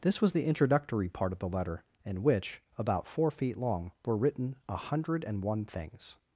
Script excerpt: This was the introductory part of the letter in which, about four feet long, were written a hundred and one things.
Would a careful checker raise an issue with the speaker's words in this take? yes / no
no